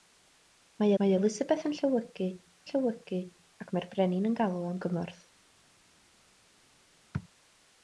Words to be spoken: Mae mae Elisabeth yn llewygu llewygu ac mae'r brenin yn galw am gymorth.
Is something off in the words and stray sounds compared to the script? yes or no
no